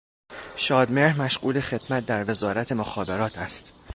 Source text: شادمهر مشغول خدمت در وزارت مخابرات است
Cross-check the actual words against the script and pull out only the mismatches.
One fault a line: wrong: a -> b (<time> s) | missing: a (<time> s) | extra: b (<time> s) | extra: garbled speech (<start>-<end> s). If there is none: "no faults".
no faults